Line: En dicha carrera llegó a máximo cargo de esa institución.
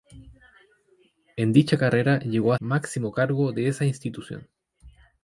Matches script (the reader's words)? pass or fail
pass